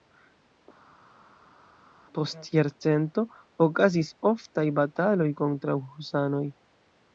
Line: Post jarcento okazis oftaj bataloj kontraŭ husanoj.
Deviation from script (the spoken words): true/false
false